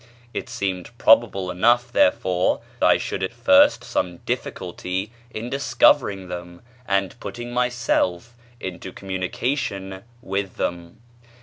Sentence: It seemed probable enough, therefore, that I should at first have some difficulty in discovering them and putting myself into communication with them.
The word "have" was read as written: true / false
false